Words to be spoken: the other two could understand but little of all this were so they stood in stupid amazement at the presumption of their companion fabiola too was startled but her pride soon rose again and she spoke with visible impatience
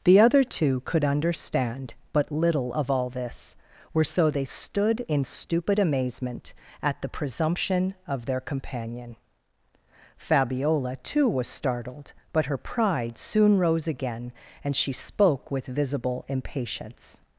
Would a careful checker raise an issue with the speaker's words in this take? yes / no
no